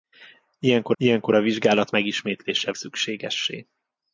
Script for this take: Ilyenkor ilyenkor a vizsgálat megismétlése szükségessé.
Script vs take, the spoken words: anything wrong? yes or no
no